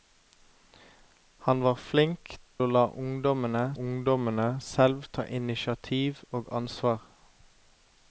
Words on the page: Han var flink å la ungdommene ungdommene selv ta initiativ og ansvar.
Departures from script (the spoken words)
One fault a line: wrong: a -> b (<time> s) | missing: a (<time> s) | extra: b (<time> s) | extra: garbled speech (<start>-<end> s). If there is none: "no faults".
no faults